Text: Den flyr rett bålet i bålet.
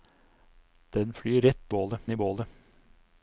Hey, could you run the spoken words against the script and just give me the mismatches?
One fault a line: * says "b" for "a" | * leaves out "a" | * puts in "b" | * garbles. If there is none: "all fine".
all fine